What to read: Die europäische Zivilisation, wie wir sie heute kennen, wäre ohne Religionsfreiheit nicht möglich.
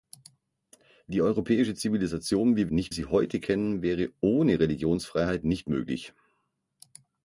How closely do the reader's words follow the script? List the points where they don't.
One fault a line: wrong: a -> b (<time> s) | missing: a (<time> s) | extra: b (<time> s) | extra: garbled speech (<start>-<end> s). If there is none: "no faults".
wrong: wir -> nicht (2.7 s)